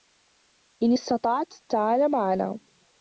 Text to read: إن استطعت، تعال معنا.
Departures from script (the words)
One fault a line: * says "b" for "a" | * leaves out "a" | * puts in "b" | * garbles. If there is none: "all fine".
all fine